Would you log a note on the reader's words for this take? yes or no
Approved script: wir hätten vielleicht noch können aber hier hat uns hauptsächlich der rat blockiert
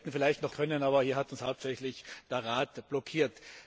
no